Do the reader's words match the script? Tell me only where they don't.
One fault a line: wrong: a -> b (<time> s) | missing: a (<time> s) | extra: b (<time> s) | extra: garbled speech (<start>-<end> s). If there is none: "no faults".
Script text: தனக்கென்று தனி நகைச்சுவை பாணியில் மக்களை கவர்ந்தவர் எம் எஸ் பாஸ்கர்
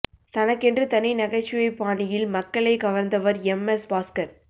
no faults